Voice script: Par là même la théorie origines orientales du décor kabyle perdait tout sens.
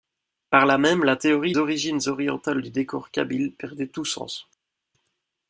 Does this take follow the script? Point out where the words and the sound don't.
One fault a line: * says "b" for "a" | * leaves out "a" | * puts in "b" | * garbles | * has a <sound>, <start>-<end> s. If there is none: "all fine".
all fine